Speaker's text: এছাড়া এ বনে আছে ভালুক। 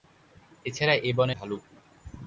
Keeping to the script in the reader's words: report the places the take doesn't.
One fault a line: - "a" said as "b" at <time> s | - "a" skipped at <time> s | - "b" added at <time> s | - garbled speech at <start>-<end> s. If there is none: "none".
- "আছে" skipped at 1.4 s